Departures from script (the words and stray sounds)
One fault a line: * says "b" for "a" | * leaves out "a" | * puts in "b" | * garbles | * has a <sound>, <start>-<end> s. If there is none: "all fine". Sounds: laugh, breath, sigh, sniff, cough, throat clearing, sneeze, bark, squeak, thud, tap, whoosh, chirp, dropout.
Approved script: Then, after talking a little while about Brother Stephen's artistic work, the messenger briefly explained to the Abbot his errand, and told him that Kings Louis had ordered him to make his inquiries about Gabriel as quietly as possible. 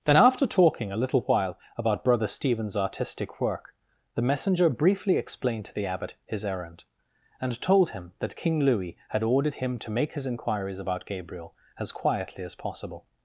* says "King" for "Kings"